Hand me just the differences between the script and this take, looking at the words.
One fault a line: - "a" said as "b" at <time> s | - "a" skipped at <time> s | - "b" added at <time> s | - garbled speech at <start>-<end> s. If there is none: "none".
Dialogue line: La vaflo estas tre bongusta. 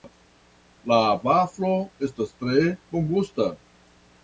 none